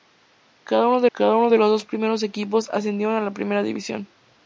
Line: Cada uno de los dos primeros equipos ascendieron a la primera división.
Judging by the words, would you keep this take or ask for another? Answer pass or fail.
fail